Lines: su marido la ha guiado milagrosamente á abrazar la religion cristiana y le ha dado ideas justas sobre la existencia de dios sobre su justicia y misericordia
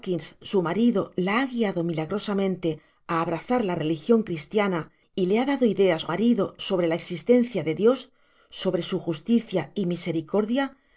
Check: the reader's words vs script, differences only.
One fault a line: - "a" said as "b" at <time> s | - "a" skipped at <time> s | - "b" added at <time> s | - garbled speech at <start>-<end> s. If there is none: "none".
- "justas" said as "marido" at 6.1 s